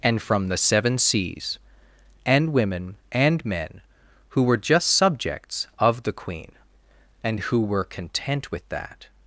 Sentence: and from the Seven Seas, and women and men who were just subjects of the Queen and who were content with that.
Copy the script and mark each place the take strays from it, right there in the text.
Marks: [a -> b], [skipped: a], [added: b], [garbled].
and from the Seven Seas, and women and men who were just subjects of the Queen and who were content with that.